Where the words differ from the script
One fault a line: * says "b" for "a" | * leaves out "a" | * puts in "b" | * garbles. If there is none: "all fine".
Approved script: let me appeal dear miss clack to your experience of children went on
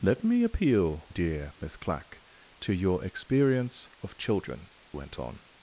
all fine